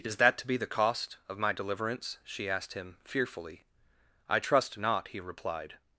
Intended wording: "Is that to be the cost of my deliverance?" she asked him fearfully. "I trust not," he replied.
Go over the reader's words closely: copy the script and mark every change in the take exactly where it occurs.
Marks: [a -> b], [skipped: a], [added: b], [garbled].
"Is that to be the cost of my deliverance?" she asked him fearfully. "I trust not," he replied.